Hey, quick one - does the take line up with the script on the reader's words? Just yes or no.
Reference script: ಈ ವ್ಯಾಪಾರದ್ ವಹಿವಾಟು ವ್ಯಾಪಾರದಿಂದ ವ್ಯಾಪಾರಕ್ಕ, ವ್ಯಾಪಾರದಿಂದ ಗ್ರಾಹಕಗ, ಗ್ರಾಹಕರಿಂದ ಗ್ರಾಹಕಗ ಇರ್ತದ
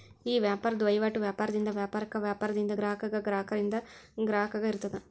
yes